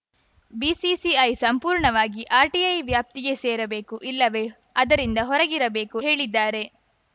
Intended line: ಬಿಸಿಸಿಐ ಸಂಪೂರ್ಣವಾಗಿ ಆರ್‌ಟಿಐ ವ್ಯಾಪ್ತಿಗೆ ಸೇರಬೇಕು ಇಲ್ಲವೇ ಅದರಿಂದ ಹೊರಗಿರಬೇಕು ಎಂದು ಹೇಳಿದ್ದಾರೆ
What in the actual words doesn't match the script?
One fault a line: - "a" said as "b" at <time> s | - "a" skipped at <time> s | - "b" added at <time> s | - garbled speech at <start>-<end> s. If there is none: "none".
- "ಎಂದು" skipped at 6.0 s